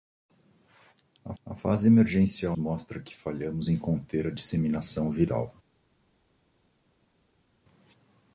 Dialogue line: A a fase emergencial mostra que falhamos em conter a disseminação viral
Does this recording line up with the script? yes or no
yes